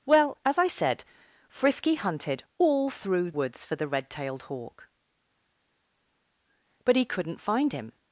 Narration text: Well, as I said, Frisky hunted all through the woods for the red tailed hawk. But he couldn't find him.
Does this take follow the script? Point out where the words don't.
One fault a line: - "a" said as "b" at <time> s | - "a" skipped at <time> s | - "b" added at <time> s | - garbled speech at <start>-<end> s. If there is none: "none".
- "the" skipped at 3.3 s